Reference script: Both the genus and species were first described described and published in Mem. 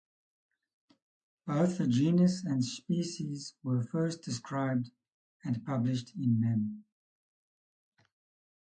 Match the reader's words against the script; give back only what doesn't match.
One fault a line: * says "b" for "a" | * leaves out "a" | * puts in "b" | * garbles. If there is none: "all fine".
* leaves out "described"